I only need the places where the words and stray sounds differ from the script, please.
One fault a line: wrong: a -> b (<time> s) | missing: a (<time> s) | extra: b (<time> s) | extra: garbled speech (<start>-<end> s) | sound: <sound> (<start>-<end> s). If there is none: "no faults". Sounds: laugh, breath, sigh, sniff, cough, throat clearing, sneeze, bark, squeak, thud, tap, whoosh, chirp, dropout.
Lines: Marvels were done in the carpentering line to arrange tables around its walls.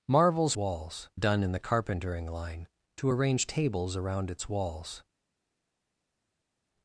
wrong: were -> walls (0.5 s)